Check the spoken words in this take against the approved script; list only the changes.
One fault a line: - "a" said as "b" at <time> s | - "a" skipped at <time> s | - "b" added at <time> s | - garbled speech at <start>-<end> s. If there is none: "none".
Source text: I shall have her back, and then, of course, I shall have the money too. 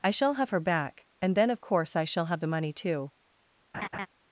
none